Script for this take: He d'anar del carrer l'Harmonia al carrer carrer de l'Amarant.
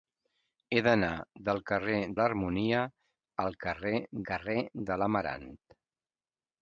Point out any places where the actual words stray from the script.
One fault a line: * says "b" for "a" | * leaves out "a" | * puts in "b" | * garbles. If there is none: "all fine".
all fine